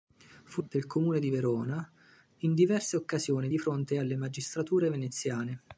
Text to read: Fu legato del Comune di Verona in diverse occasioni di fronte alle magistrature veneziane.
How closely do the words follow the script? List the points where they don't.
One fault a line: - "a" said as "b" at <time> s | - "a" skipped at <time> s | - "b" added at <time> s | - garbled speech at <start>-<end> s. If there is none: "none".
- "legato" skipped at 0.6 s